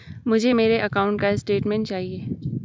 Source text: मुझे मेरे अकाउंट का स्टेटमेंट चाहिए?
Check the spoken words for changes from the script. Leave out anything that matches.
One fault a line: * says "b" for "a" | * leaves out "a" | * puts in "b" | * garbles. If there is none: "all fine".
all fine